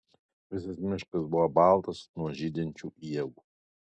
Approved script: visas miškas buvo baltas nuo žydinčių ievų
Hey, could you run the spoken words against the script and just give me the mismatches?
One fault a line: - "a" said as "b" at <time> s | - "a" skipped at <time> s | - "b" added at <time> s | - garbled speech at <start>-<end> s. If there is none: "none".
none